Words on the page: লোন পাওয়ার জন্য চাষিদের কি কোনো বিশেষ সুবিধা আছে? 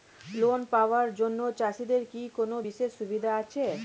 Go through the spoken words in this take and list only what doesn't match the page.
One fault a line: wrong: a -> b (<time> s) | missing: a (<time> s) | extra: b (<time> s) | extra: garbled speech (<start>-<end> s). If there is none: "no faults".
no faults